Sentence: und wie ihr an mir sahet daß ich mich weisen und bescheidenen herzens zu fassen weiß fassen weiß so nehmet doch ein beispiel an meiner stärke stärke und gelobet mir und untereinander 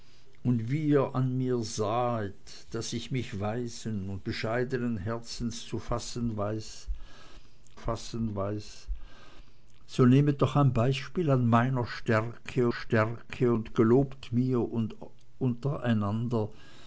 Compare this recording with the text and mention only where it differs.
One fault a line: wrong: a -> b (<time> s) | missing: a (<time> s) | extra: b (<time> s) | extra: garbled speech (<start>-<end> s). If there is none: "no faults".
no faults